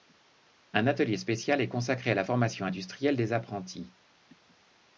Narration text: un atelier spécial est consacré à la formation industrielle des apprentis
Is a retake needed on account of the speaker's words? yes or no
no